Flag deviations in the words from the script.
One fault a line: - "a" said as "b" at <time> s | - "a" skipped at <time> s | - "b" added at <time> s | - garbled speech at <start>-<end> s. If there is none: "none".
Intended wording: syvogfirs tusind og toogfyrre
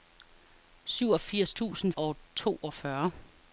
none